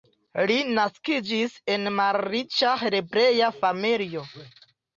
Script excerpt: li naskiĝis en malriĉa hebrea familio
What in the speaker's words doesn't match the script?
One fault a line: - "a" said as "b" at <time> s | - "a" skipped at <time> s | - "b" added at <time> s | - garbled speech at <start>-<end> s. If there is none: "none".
none